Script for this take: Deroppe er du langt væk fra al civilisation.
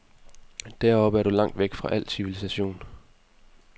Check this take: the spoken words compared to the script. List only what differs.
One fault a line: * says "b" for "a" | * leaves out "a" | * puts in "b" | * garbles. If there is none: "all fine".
all fine